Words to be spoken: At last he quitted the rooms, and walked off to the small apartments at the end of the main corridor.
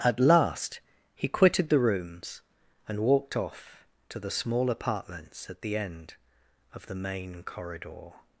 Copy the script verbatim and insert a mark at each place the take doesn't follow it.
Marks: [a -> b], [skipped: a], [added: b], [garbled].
At last he quitted the rooms, and walked off to the small apartments at the end of the main corridor.